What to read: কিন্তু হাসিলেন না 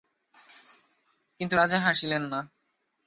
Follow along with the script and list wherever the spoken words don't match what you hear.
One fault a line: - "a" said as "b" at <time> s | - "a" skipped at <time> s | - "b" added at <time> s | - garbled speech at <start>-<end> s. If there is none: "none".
- "রাজা" added at 1.5 s